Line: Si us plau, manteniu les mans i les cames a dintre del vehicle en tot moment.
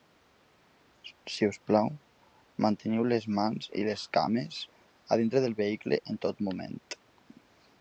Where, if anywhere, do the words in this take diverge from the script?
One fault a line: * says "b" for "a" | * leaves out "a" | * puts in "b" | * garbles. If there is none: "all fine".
all fine